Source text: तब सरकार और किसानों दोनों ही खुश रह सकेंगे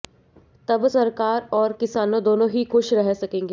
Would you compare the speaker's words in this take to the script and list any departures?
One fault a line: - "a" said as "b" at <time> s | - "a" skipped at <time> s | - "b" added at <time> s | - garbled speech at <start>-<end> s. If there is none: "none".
none